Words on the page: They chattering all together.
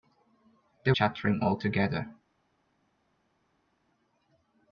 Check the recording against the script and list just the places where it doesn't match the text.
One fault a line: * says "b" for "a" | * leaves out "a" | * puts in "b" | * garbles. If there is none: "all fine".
all fine